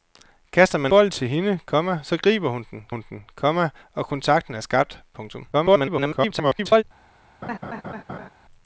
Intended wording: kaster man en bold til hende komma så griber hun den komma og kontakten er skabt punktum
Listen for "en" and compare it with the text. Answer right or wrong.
wrong